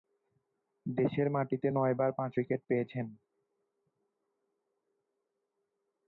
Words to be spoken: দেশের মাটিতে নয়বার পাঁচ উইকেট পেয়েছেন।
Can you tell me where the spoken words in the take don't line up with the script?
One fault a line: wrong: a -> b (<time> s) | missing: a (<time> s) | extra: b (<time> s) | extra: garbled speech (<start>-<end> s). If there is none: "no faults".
no faults